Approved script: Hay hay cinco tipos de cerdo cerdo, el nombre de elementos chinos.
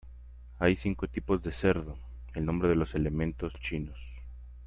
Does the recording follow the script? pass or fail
fail